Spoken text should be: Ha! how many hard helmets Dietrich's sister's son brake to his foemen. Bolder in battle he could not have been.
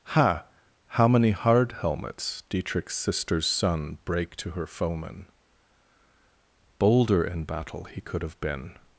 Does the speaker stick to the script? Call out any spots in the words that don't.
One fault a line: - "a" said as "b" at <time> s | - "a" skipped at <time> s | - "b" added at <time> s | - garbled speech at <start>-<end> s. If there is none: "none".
- "his" said as "her" at 4.5 s
- "not" skipped at 8.2 s